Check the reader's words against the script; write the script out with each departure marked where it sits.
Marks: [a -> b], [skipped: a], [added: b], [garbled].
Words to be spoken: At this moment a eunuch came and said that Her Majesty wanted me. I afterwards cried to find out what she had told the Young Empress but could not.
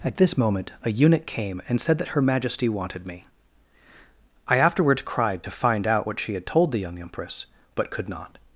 At this moment a eunuch came and said that Her Majesty wanted me. I afterwards cried to find out what she had told the Young Empress but could not.